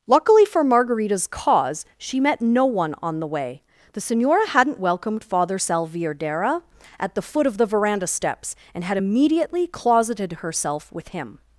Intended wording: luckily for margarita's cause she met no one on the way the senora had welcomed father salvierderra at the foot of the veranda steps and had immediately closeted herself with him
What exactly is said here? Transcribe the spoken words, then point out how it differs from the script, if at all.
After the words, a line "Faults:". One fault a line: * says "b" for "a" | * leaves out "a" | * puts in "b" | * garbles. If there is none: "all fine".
luckily for margarita's cause she met no one on the way the senora hadn't welcomed father salvierderra at the foot of the veranda steps and had immediately closeted herself with him
Faults:
* says "hadn't" for "had"